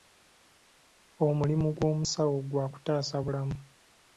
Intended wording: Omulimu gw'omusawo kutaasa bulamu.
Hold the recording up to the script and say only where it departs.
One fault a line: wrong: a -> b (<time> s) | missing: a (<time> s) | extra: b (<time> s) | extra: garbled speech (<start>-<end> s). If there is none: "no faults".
extra: gwa (2.5 s)